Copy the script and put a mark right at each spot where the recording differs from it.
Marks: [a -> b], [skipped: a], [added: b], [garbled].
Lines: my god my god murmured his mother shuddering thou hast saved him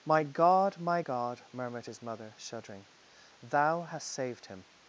my god my god murmured his mother shuddering thou hast saved him